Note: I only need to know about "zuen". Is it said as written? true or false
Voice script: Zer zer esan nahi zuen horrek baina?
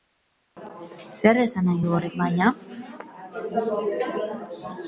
false